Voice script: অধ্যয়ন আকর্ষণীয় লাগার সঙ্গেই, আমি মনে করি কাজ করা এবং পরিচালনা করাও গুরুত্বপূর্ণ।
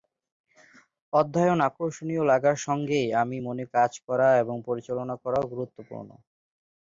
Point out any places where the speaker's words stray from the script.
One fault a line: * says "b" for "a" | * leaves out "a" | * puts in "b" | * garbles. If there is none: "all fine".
* leaves out "করি"